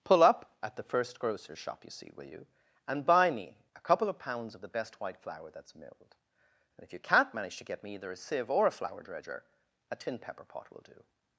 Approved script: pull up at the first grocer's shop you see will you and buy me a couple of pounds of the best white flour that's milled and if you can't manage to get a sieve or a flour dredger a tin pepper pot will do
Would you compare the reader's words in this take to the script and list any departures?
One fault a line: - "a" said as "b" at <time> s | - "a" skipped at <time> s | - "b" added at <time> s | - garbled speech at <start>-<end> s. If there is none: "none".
- "me either" added at 7.8 s